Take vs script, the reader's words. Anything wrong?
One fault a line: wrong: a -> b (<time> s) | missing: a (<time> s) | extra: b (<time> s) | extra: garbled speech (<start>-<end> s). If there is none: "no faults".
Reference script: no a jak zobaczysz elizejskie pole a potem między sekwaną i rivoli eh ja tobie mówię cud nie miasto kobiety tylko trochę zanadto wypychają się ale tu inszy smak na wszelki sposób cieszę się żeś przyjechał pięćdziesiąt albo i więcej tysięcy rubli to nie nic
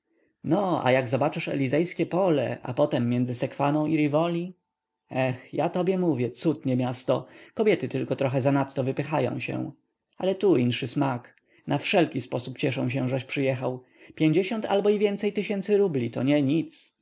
no faults